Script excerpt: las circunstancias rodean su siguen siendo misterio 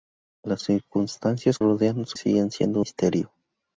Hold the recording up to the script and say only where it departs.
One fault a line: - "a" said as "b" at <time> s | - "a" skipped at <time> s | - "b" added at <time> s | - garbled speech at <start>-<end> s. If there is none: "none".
none